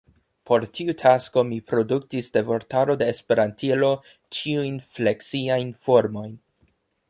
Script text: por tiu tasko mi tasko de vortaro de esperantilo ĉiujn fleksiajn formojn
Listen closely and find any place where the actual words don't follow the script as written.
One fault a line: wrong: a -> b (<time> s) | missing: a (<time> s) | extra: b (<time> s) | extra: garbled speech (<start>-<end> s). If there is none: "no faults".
wrong: tasko -> produktis (1.7 s)